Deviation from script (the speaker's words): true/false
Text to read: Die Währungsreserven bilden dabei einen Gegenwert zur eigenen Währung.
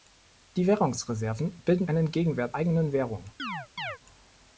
true